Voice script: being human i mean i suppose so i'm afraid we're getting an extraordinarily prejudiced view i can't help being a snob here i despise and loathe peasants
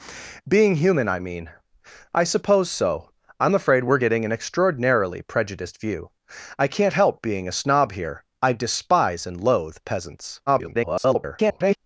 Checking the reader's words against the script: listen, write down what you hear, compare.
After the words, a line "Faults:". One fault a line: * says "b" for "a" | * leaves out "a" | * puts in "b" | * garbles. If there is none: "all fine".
being human i mean i suppose so i'm afraid we're getting an extraordinarily prejudiced view i can't help being a snob here i despise and loathe peasants [garbled]
Faults:
* garbles